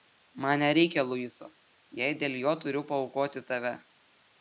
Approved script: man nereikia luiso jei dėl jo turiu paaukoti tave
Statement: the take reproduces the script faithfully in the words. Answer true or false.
true